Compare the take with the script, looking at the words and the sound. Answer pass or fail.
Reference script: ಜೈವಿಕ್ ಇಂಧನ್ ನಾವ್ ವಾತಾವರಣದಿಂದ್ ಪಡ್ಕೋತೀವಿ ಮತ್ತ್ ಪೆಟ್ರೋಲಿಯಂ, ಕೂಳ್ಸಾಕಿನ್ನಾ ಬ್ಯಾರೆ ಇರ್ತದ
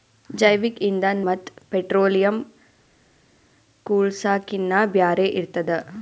fail